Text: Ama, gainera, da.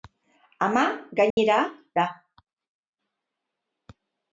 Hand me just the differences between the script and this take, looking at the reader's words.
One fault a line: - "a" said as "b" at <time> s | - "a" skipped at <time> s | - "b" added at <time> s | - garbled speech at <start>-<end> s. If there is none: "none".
none